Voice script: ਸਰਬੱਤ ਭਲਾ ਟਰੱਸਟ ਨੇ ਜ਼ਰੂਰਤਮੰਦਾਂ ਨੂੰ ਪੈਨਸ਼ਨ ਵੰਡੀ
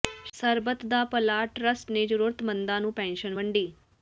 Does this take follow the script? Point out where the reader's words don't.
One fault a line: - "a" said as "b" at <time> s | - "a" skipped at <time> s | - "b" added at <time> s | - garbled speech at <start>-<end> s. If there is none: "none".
- "ਦਾ" added at 0.8 s